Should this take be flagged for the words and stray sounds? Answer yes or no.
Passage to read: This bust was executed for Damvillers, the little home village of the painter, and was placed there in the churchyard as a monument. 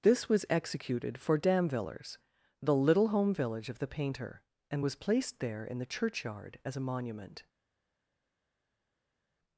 yes